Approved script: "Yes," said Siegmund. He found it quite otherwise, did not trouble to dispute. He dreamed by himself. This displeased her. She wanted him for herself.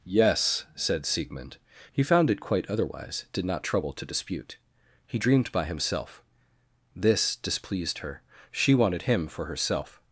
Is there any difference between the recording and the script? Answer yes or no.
no